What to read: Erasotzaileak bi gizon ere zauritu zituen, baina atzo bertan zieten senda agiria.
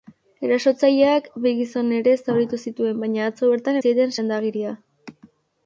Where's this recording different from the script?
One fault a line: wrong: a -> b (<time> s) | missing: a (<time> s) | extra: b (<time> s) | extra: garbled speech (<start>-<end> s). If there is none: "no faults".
no faults